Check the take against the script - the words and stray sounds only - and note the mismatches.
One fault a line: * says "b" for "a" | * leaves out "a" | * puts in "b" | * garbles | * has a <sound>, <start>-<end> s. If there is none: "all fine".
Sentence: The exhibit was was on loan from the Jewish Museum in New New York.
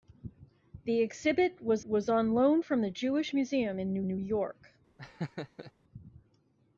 * has a laugh, 5.0-5.7 s